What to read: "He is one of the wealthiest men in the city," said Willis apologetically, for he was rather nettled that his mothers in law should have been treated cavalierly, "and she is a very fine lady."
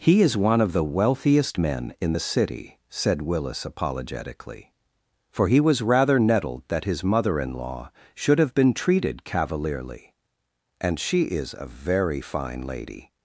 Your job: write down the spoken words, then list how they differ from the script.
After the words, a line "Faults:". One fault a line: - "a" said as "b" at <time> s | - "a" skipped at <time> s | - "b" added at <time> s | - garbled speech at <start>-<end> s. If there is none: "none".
"He is one of the wealthiest men in the city," said Willis apologetically, for he was rather nettled that his mother in law should have been treated cavalierly, "and she is a very fine lady."
Faults:
- "mothers" said as "mother" at 7.0 s